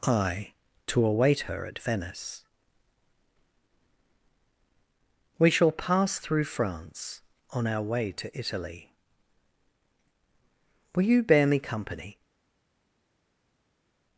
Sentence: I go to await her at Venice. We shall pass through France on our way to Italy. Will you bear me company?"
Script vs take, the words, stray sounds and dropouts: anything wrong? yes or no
yes